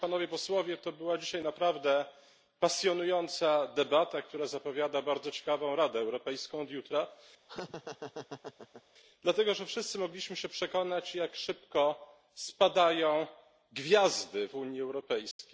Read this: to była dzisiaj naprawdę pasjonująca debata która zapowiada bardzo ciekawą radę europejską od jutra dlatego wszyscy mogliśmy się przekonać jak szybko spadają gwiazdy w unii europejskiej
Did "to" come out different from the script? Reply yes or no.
no